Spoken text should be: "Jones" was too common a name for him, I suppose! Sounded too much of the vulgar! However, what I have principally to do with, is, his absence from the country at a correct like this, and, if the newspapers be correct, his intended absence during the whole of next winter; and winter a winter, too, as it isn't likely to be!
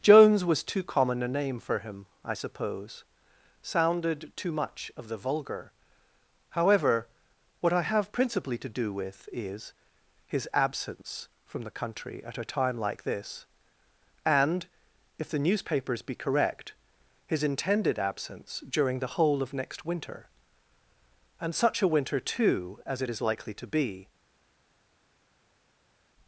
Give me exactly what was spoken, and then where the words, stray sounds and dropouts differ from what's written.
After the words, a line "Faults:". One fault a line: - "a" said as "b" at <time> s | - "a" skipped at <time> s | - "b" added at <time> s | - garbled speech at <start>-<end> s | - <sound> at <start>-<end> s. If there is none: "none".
"Jones" was too common a name for him, I suppose! Sounded too much of the vulgar! However, what I have principally to do with, is, his absence from the country at a time like this, and, if the newspapers be correct, his intended absence during the whole of next winter; and such a winter, too, as it is likely to be!
Faults:
- "correct" said as "time" at 12.4 s
- "winter" said as "such" at 21.5 s
- "isn't" said as "is" at 23.1 s